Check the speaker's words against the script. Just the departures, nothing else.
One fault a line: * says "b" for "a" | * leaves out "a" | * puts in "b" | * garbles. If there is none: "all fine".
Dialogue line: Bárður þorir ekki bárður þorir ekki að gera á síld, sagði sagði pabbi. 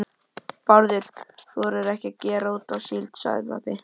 * leaves out "bárður þorir ekki"
* puts in "út"
* leaves out "sagði"